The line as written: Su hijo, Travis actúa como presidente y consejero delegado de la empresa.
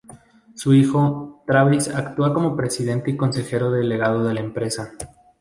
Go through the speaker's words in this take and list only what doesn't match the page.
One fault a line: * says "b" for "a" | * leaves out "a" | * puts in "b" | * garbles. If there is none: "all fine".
all fine